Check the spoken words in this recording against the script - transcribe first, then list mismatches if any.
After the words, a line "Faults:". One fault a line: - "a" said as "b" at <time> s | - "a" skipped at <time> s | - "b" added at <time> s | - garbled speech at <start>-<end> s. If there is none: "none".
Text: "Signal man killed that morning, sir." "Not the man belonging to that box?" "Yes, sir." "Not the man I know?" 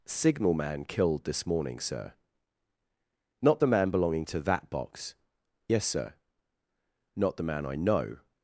"Signal man killed this morning, sir." "Not the man belonging to that box?" "Yes, sir." "Not the man I know?"
Faults:
- "that" said as "this" at 1.2 s